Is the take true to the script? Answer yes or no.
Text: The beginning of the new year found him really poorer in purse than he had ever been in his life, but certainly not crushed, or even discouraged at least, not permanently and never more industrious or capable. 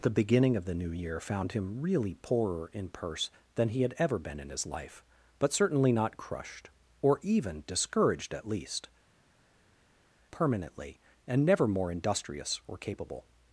no